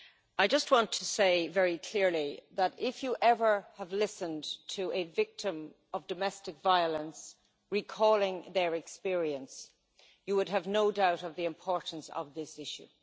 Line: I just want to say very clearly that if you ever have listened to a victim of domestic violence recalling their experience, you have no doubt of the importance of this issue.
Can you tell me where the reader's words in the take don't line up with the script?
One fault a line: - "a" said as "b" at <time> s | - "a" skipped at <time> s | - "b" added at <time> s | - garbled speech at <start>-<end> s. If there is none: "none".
- "would" added at 10.3 s